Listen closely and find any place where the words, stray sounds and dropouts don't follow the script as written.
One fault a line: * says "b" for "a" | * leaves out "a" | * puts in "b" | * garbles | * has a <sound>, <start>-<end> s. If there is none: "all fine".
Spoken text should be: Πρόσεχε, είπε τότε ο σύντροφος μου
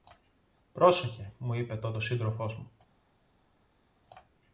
* puts in "μου"